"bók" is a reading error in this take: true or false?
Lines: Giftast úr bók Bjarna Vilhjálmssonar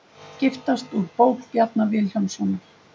false